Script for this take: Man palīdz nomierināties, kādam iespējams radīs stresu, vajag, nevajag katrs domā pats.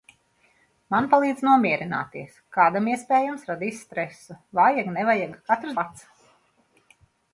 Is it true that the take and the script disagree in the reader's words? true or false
true